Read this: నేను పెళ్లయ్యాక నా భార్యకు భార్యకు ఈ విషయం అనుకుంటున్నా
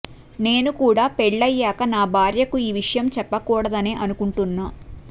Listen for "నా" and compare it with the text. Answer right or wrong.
right